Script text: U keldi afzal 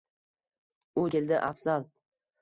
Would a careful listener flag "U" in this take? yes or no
no